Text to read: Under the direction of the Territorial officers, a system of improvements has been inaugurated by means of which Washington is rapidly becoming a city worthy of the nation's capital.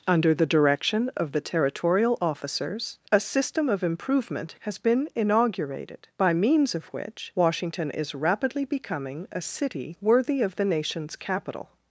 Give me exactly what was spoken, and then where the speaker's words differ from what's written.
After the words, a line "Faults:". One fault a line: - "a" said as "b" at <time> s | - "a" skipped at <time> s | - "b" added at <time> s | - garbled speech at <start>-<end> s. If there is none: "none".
Under the direction of the Territorial officers, a system of improvement has been inaugurated by means of which Washington is rapidly becoming a city worthy of the nation's capital.
Faults:
- "improvements" said as "improvement" at 3.8 s